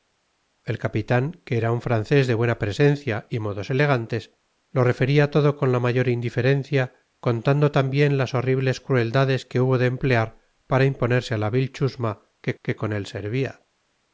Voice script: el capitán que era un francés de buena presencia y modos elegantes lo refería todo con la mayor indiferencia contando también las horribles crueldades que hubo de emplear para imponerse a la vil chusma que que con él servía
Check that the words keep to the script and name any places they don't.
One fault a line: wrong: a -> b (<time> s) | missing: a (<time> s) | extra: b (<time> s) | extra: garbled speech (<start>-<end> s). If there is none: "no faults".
no faults